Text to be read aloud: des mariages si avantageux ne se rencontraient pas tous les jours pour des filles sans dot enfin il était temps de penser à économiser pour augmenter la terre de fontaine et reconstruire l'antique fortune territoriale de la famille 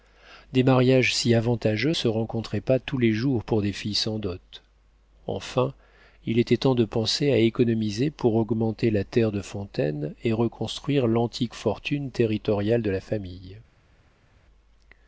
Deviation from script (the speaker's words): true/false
true